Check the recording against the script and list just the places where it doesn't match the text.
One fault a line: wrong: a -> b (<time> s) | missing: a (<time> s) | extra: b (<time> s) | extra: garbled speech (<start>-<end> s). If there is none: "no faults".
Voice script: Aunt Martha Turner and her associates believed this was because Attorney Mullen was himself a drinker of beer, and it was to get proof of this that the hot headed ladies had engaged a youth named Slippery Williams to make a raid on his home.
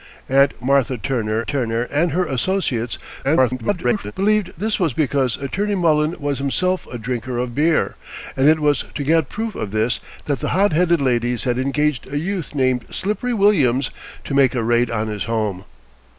extra: Turner (1.4 s)
extra: garbled speech (3.2-4.1 s)